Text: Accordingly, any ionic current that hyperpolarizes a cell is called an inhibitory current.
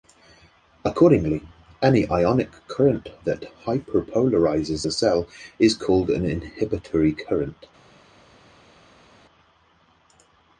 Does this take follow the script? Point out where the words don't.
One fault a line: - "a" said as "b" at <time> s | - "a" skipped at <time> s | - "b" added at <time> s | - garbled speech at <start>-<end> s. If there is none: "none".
none